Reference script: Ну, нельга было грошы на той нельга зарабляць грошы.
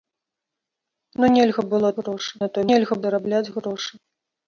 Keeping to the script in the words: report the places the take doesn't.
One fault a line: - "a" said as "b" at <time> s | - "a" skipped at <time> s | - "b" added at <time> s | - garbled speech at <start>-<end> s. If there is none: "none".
none